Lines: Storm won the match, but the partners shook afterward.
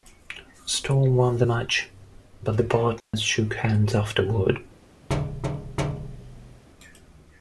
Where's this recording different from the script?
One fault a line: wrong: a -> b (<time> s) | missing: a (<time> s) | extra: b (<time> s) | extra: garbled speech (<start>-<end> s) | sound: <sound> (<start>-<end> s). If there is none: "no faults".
sound: dropout (3.0-3.1 s)
extra: hands (3.5 s)
sound: thud (5.1-6.6 s)